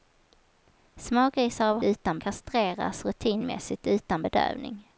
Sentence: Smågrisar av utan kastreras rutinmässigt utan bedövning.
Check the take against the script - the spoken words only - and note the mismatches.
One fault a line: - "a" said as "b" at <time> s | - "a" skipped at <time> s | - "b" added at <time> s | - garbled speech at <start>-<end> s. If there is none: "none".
none